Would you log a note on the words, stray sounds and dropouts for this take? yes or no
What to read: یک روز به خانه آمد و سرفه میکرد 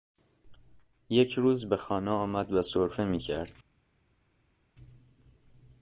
no